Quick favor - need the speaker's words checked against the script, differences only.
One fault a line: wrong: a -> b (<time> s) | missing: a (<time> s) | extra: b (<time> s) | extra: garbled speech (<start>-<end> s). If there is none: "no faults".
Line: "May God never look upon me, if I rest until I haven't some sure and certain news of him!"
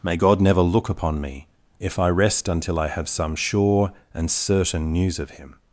wrong: haven't -> have (2.9 s)